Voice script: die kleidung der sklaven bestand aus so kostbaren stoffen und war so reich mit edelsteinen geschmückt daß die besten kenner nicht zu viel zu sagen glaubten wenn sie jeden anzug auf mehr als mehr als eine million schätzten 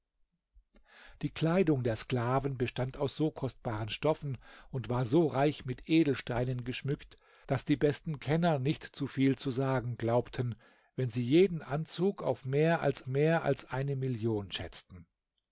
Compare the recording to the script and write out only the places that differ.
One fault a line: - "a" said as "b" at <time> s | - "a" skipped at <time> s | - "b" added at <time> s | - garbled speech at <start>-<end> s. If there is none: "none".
none